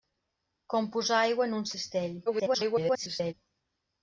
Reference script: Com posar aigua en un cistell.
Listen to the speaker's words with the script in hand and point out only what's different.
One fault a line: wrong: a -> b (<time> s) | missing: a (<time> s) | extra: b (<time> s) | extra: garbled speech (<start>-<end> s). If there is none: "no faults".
extra: garbled speech (2.3-3.3 s)